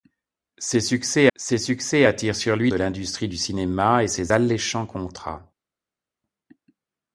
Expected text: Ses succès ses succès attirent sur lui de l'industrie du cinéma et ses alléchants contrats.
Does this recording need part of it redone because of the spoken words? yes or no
no